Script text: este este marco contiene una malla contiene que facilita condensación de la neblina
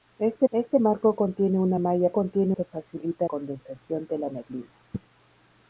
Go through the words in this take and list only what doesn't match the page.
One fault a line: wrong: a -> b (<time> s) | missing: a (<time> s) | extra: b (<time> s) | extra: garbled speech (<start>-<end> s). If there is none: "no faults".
no faults